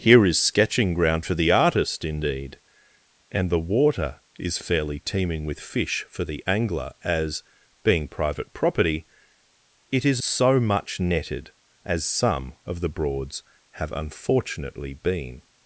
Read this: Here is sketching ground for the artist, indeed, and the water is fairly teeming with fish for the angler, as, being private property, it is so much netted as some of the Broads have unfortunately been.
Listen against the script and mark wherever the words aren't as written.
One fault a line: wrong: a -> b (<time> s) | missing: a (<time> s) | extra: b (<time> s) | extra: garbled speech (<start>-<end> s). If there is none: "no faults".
no faults